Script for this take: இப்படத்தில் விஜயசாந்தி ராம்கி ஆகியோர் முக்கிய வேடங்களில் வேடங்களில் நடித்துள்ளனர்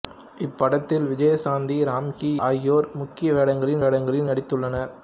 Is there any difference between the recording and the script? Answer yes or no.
no